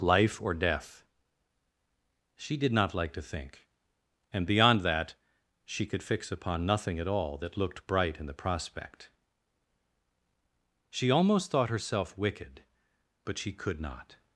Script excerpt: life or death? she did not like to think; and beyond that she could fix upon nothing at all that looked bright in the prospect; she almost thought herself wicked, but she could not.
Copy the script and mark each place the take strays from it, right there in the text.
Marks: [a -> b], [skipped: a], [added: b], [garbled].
life or death? she did not like to think; and beyond that she could fix upon nothing at all that looked bright in the prospect; she almost thought herself wicked, but she could not.